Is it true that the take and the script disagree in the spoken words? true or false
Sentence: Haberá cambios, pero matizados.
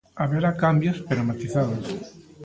false